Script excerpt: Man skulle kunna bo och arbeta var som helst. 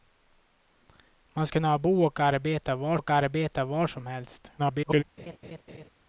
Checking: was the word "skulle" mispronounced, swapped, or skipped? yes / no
yes